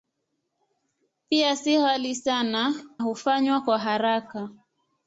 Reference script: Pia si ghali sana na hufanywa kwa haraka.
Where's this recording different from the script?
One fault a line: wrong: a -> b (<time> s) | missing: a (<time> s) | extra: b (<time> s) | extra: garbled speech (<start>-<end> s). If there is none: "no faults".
missing: na (2.7 s)